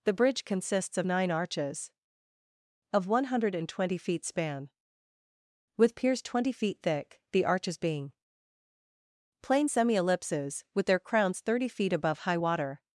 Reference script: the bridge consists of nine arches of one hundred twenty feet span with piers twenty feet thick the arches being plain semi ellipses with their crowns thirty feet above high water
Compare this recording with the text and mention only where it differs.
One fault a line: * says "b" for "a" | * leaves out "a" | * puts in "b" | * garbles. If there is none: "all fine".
all fine